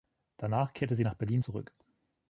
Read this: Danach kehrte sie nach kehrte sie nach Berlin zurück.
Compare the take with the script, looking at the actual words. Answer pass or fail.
fail